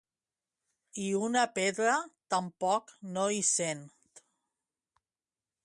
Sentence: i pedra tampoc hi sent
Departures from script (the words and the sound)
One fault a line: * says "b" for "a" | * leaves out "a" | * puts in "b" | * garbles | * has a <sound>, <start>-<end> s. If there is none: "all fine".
* puts in "una"
* puts in "no"